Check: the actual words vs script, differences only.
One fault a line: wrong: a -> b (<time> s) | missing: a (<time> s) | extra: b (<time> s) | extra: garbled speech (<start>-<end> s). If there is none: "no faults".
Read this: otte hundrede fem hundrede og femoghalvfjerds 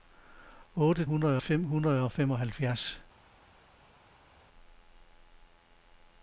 no faults